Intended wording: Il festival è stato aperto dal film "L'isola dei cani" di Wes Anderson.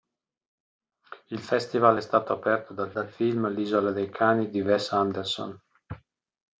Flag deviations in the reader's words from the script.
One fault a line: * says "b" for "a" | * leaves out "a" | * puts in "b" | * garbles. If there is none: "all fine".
* puts in "dal"